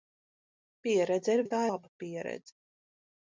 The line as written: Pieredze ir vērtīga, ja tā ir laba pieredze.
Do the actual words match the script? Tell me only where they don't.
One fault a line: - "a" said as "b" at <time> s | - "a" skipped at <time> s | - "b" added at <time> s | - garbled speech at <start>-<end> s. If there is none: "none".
- "vērtīga" skipped at 1.4 s
- "ir" skipped at 1.6 s